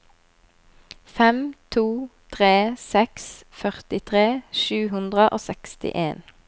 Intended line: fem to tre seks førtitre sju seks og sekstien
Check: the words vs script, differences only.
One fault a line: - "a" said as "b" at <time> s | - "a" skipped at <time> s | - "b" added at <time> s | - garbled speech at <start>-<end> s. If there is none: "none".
- "seks" said as "hundre" at 4.9 s